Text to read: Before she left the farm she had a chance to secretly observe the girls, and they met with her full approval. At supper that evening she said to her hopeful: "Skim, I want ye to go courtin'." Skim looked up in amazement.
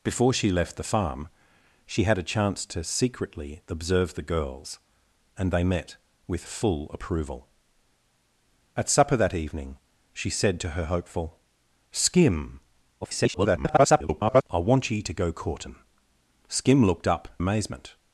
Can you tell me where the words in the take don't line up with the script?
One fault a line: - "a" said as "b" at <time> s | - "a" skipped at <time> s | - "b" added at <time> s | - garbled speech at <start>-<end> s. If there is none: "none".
- "her" skipped at 6.5 s
- garbled speech at 13.0-14.4 s
- "in" skipped at 17.3 s